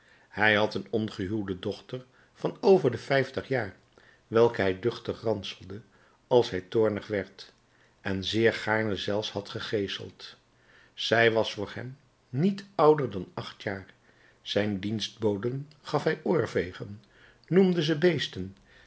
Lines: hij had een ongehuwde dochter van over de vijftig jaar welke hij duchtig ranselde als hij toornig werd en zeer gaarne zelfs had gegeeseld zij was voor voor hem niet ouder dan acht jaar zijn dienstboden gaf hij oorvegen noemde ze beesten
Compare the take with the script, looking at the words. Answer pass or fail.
fail